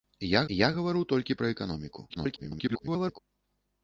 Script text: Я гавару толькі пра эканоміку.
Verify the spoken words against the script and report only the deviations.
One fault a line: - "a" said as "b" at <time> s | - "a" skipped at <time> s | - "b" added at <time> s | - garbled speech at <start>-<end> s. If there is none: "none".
- "я" added at 0.5 s
- garbled speech at 2.1-3.2 s